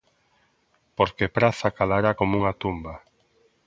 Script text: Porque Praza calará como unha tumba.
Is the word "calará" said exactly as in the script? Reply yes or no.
yes